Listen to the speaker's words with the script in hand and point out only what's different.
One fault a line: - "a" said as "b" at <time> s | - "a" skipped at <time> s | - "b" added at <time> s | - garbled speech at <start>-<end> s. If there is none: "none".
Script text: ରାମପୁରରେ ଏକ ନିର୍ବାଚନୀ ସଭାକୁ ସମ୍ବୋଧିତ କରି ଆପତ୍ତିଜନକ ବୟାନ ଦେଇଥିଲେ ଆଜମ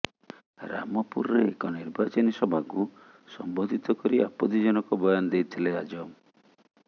none